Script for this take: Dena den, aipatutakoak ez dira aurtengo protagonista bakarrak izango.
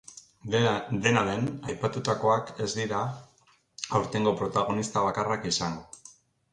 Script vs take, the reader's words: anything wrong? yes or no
no